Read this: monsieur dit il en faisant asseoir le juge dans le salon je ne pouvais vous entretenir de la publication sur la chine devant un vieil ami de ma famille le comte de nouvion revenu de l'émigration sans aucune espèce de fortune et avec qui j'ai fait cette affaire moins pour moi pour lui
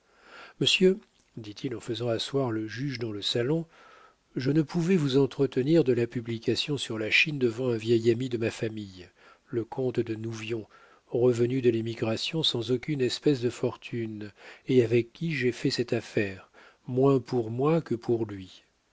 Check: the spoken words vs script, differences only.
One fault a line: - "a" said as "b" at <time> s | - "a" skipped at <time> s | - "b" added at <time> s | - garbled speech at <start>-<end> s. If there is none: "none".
- "que" added at 17.8 s